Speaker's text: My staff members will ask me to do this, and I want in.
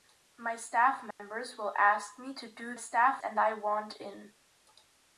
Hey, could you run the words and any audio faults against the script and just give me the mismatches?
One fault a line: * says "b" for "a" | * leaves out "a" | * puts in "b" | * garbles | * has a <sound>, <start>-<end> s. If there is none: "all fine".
* has a dropout, 1.1-1.2 s
* says "staff" for "this"